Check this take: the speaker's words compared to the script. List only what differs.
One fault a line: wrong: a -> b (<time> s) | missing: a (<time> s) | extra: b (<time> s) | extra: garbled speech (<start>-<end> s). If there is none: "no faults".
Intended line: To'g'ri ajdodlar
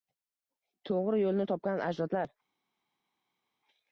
extra: yo'lni topgan (1.2 s)